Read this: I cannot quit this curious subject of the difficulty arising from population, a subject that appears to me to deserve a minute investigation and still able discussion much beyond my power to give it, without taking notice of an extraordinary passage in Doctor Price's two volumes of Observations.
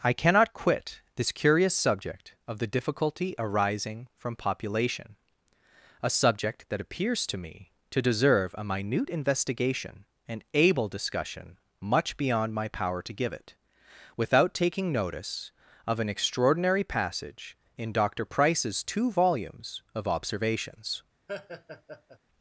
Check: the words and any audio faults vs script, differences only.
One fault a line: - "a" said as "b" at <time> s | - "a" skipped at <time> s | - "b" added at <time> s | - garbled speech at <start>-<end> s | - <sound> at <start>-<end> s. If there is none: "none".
- "still" skipped at 10.4 s
- laugh at 21.3-22.2 s